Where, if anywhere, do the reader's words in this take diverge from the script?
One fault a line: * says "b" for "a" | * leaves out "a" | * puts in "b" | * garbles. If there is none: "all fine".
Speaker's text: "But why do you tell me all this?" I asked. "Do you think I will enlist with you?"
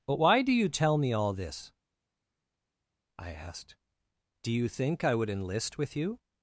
* says "would" for "will"